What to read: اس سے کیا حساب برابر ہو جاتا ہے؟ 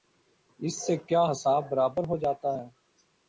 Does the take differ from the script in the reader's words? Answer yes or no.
no